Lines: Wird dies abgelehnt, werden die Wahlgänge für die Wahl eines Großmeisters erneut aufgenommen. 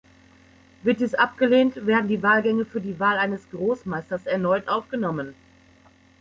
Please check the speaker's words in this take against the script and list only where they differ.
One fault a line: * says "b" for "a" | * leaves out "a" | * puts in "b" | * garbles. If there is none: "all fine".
all fine